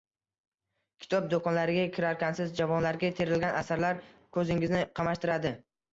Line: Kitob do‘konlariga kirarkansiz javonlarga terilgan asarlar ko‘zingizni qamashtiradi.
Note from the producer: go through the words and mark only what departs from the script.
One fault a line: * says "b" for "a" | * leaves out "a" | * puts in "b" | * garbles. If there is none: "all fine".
all fine